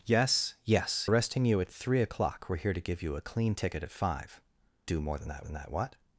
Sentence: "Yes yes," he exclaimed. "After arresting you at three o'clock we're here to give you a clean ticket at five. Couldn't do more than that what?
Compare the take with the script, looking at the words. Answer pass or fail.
fail